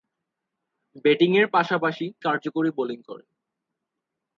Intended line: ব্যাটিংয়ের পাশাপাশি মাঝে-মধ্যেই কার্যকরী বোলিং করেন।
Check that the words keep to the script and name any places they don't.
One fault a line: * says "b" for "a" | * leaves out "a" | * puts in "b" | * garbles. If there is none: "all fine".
* leaves out "মাঝে-মধ্যেই"